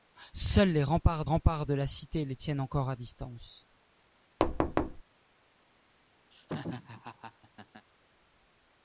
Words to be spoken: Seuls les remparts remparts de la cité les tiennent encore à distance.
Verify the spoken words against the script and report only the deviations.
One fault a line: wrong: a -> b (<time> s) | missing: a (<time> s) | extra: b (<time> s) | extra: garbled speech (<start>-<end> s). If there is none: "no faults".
no faults